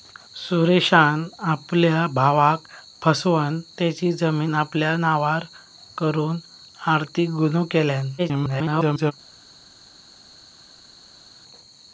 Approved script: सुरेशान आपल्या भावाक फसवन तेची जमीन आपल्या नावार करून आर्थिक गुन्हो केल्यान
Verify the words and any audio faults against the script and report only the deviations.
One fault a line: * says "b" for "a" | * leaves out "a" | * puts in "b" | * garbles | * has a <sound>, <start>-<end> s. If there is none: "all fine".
* garbles